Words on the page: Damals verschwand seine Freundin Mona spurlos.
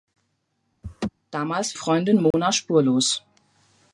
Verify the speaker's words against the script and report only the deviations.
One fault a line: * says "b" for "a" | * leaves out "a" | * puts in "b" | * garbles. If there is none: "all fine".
* leaves out "verschwand seine"